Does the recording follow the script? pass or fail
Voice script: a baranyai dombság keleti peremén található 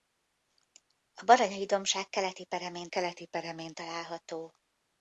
fail